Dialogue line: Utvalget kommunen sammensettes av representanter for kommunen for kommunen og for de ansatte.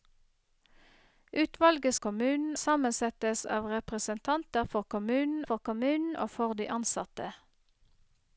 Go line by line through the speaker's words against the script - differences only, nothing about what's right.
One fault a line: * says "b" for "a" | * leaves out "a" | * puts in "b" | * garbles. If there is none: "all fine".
all fine